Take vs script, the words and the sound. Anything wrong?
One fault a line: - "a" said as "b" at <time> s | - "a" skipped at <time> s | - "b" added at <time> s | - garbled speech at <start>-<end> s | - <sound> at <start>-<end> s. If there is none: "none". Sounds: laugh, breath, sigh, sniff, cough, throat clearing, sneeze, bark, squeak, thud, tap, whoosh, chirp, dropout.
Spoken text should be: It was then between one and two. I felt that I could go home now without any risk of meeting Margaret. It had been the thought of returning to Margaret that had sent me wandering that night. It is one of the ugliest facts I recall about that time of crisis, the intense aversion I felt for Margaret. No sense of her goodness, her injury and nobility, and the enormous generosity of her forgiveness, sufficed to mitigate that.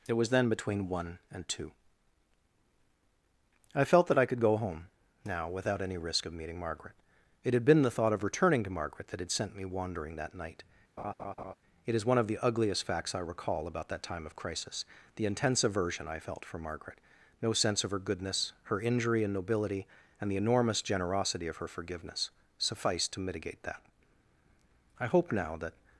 - laugh at 11.0-11.5 s
- "I hope now that" added at 25.0 s